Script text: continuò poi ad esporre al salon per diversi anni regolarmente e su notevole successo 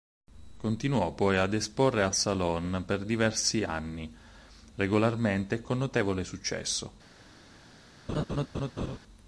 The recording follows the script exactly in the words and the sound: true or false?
false